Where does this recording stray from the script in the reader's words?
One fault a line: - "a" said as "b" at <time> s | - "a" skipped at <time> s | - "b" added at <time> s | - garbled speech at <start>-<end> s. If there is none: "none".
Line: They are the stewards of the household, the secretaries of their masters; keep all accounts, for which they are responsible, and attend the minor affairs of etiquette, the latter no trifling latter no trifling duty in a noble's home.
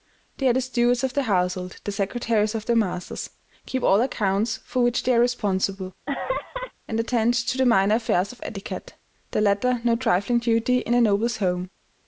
- "to" added at 7.3 s
- "latter no trifling" skipped at 10.4 s